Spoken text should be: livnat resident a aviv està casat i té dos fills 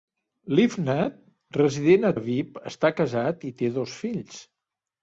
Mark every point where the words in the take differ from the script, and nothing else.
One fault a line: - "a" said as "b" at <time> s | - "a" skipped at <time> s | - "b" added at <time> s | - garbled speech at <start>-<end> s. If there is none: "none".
none